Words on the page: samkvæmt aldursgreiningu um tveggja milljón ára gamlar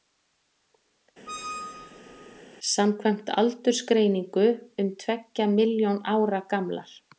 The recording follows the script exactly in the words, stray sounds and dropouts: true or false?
false